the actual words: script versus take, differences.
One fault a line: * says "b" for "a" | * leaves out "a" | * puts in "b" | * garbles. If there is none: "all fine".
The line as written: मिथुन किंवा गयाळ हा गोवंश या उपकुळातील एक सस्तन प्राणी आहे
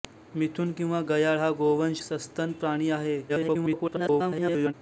* leaves out "या उपकुळातील एक"
* garbles